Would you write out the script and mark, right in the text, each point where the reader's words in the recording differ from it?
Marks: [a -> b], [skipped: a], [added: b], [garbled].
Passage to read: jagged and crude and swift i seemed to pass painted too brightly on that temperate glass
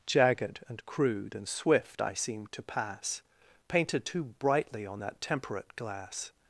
jagged and crude and swift i seemed to pass painted too brightly on that temperate glass